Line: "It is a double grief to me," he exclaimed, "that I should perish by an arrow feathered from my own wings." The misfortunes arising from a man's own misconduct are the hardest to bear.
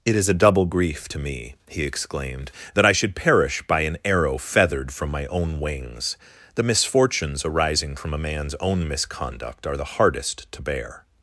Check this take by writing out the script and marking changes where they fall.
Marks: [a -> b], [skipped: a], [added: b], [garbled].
"It is a double grief to me," he exclaimed, "that I should perish by an arrow feathered from my own wings." The misfortunes arising from a man's own misconduct are the hardest to bear.